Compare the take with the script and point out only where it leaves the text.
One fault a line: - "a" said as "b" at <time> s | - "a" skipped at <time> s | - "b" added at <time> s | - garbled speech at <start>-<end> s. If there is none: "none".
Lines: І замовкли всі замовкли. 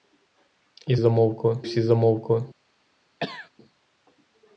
none